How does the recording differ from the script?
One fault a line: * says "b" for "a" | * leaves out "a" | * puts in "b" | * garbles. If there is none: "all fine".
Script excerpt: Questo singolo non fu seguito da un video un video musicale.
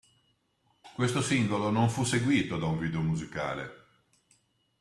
* leaves out "un video"